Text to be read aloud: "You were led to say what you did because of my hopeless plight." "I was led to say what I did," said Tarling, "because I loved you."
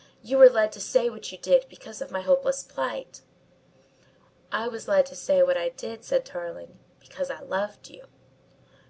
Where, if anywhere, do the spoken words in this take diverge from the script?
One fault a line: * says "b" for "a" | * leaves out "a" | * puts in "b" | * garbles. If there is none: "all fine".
all fine